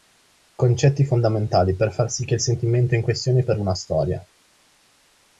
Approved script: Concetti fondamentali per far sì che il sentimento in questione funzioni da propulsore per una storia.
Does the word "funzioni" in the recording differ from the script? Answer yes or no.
yes